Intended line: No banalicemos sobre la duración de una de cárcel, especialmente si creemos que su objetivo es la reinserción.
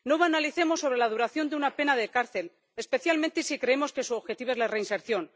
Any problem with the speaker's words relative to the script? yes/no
yes